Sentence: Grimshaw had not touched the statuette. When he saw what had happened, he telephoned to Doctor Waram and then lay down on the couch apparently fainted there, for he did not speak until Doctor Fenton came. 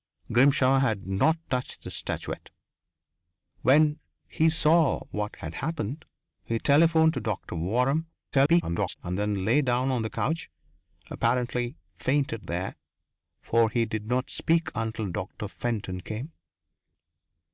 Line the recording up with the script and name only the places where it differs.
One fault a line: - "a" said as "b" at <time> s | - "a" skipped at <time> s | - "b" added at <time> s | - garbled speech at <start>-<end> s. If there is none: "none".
- garbled speech at 8.3-9.0 s